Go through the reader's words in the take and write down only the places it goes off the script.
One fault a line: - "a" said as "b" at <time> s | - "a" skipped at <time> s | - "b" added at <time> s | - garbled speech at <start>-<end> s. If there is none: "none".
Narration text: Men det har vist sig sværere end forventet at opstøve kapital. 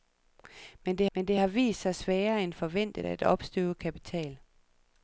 - "men det" added at 1.1 s